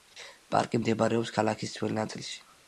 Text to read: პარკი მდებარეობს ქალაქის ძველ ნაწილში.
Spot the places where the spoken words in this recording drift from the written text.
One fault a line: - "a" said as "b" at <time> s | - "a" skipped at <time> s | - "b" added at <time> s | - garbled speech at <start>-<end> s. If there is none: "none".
none